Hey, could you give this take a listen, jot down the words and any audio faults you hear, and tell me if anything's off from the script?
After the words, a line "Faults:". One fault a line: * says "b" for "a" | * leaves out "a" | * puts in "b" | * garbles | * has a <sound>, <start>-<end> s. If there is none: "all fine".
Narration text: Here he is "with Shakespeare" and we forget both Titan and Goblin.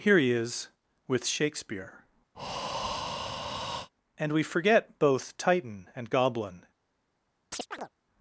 Here he is "with Shakespeare" and we forget both Titan and Goblin.
Faults:
* has a breath, 2.3-3.9 s
* has a chirp, 7.5-7.9 s